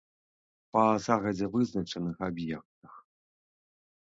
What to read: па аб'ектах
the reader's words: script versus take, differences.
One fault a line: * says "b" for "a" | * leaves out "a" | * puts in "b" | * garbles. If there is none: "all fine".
* puts in "загадзя вызначаных"